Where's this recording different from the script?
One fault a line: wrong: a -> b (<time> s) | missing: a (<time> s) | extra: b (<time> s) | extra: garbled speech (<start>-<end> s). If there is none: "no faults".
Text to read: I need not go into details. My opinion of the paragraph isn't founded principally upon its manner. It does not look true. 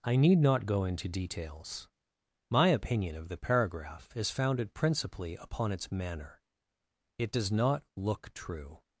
wrong: isn't -> is (4.2 s)